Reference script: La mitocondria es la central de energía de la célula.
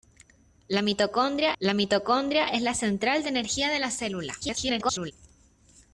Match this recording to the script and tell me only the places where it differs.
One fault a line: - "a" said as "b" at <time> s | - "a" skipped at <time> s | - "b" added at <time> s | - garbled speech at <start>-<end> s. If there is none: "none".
- "la mitocondria" added at 1.6 s
- garbled speech at 4.4-5.1 s